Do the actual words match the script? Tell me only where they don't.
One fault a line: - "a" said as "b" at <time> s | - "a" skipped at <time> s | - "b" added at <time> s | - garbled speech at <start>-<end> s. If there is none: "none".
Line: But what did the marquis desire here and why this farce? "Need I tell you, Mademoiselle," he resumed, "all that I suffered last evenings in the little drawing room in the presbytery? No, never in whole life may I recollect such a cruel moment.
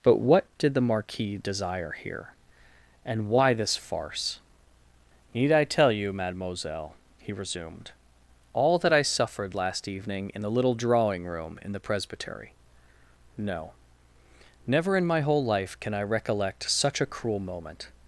- "evenings" said as "evening" at 9.9 s
- "my" added at 15.0 s
- "may" said as "can" at 15.8 s